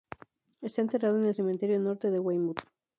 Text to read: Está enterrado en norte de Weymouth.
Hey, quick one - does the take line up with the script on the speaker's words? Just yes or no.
no